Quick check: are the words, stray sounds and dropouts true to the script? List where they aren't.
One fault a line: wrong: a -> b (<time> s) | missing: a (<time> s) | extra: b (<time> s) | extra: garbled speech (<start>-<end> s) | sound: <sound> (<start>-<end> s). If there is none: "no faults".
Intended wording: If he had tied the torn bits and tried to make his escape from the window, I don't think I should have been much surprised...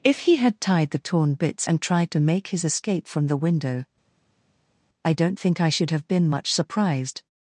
no faults